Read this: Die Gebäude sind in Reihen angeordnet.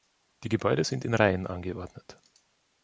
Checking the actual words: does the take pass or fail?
pass